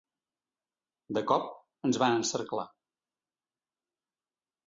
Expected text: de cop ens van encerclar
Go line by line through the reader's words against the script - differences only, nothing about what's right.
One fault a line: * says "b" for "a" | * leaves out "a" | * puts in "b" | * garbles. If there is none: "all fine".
all fine